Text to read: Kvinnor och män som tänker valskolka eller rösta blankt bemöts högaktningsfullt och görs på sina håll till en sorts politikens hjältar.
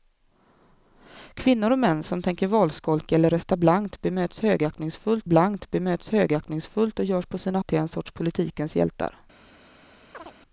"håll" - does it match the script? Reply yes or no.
no